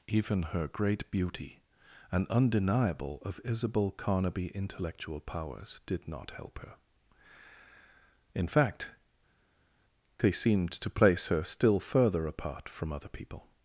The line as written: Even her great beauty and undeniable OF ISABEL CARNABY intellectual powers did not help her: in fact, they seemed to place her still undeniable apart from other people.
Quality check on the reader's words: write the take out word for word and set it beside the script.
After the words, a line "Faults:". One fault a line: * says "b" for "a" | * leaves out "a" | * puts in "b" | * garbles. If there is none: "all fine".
Even her great beauty and undeniable OF ISABEL CARNABY intellectual powers did not help her: in fact, they seemed to place her still further apart from other people.
Faults:
* says "further" for "undeniable"